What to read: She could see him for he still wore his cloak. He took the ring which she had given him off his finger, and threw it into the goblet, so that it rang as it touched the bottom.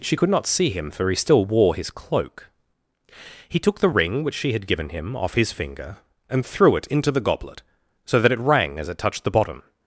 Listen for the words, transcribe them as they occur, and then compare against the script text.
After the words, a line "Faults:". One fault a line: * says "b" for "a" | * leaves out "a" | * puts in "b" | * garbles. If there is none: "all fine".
She could not see him for he still wore his cloak. He took the ring which she had given him off his finger, and threw it into the goblet, so that it rang as it touched the bottom.
Faults:
* puts in "not"